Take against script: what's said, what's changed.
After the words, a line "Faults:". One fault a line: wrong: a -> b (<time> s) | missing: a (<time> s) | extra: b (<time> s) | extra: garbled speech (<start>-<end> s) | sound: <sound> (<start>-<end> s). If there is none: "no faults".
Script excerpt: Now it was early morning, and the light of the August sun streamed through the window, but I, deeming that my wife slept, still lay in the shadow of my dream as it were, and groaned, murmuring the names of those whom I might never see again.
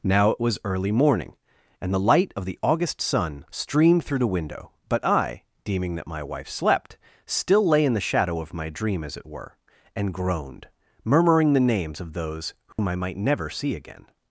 Now it was early morning, and the light of the August sun streamed through the window, but I, deeming that my wife slept, still lay in the shadow of my dream as it were, and groaned, murmuring the names of those whom I might never see again.
Faults:
sound: dropout (12.7-12.8 s)